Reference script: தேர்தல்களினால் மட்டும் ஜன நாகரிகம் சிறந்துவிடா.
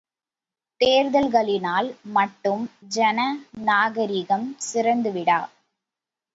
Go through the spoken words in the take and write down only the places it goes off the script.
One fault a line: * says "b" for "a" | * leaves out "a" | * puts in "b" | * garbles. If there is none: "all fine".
all fine